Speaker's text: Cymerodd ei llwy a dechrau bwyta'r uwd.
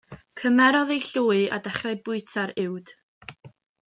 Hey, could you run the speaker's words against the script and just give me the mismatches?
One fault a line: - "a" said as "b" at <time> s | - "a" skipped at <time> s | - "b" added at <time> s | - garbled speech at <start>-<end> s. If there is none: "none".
none